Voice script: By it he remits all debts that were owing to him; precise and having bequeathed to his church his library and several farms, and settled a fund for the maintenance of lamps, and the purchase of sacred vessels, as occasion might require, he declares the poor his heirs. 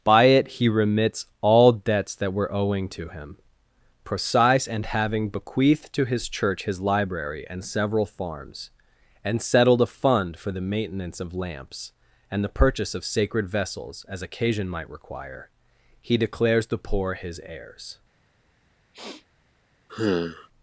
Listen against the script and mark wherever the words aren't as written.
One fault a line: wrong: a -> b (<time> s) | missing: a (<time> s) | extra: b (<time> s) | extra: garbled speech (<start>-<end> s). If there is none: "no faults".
no faults